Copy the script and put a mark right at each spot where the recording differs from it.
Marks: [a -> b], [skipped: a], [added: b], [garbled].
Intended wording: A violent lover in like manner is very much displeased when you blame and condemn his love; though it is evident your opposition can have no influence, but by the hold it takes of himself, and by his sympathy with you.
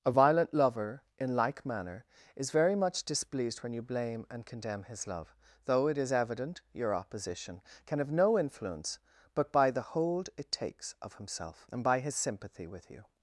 A violent lover in like manner is very much displeased when you blame and condemn his love; though it is evident your opposition can have no influence, but by the hold it takes of himself, and by his sympathy with you.